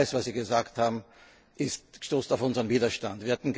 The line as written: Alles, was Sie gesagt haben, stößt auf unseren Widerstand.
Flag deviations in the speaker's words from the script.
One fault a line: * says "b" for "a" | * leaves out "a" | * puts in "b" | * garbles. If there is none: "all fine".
all fine